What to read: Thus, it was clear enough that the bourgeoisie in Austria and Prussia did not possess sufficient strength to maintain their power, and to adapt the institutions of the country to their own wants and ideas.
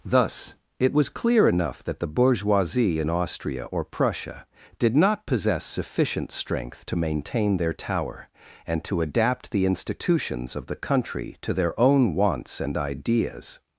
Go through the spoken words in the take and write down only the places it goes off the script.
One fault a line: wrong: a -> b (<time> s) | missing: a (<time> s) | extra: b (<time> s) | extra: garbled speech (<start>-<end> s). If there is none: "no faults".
wrong: and -> or (3.6 s)
wrong: power -> tower (7.7 s)